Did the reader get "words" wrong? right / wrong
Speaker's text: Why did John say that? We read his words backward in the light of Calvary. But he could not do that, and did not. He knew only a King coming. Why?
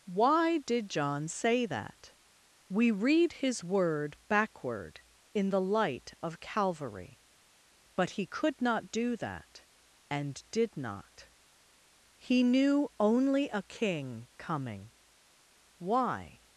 wrong